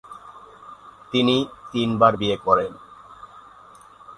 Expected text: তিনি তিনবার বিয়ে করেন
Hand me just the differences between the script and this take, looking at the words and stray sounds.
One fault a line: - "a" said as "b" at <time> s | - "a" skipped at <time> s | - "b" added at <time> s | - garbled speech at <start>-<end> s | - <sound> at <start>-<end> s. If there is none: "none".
none